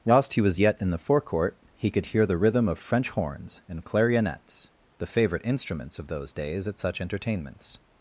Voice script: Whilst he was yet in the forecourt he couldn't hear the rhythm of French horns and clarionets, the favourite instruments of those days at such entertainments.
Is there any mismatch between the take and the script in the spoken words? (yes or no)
yes